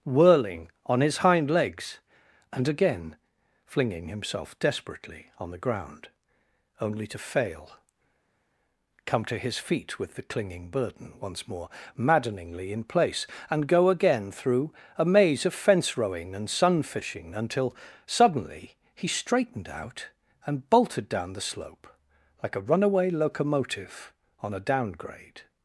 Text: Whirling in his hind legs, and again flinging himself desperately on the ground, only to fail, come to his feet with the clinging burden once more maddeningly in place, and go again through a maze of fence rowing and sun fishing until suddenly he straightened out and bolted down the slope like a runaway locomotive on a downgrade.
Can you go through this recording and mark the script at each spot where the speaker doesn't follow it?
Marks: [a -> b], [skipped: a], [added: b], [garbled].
Whirling [in -> on] his hind legs, and again flinging himself desperately on the ground, only to fail, come to his feet with the clinging burden once more maddeningly in place, and go again through a maze of fence rowing and sun fishing until suddenly he straightened out and bolted down the slope like a runaway locomotive on a downgrade.